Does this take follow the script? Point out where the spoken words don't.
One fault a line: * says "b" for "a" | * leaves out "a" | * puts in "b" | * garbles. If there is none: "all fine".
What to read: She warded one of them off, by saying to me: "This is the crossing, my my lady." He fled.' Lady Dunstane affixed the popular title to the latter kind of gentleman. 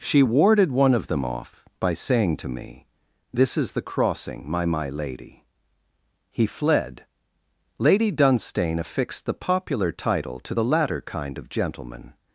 all fine